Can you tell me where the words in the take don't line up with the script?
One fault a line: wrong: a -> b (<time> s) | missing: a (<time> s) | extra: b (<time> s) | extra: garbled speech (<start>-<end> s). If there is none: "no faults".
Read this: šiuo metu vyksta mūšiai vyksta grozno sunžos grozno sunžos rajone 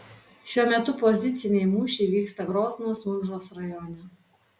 wrong: vyksta -> poziciniai (1.0 s)
missing: grozno sunžos (3.5 s)